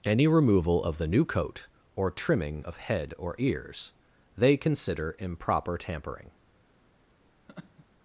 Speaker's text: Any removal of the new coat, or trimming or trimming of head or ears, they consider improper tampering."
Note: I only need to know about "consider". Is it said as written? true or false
true